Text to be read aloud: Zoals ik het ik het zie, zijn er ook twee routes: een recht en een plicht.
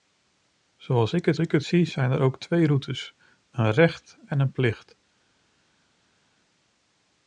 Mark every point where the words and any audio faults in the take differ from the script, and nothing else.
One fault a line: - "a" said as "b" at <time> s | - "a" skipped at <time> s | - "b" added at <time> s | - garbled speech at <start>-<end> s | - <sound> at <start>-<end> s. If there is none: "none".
none